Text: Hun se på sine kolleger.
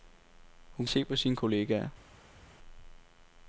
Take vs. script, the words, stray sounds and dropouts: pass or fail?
pass